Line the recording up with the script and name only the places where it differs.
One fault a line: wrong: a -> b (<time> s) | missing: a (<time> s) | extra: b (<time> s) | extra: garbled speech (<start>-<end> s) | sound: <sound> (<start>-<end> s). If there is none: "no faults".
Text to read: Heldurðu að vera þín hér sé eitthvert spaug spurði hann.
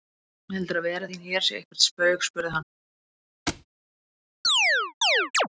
sound: thud (3.5-3.7 s)
sound: chirp (4.4-5.5 s)